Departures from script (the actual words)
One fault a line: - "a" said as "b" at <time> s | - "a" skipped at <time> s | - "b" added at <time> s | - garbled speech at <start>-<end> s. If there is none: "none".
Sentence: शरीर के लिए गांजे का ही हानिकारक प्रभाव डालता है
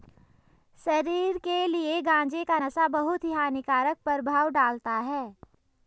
- "नशा बहुत" added at 2.5 s